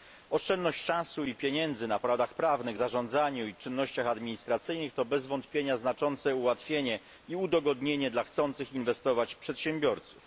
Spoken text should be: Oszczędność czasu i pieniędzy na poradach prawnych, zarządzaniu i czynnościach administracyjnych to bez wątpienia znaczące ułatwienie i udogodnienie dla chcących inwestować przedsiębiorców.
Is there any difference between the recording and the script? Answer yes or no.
no